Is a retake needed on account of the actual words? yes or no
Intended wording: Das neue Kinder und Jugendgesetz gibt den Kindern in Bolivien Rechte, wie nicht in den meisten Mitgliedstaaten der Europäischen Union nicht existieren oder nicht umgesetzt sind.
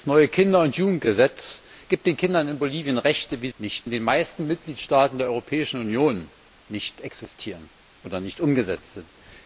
no